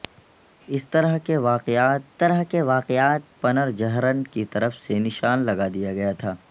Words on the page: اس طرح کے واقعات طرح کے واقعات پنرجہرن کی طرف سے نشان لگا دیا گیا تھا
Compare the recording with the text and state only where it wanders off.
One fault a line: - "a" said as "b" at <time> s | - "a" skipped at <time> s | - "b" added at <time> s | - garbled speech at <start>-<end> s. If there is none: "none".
none